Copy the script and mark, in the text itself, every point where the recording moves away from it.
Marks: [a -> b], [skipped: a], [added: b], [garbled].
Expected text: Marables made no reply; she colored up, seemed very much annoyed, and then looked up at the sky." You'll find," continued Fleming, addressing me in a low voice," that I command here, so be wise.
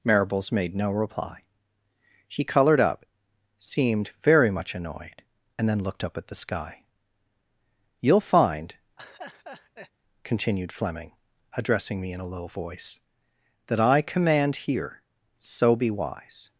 Marables made no reply; she colored up, seemed very much annoyed, and then looked up at the sky." You'll find," continued Fleming, addressing me in a low voice," that I command here, so be wise.